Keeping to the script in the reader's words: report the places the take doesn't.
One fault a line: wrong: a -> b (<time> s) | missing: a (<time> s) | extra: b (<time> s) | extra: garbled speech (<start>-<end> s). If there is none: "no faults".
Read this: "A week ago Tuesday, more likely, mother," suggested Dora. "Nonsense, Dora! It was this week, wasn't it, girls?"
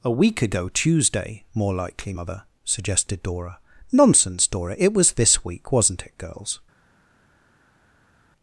no faults